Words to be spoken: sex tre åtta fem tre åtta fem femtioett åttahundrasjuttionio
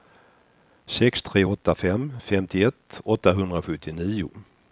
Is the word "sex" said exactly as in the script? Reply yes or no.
yes